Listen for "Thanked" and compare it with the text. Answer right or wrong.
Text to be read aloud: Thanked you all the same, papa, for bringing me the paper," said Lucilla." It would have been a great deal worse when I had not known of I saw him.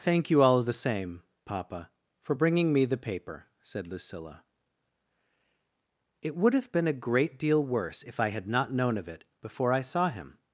wrong